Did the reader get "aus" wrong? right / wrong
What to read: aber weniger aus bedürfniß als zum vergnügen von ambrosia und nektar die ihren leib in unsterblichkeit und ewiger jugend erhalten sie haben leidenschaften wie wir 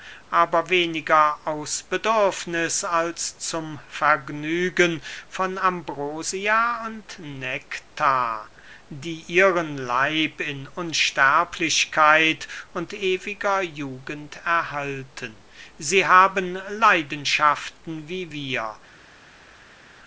right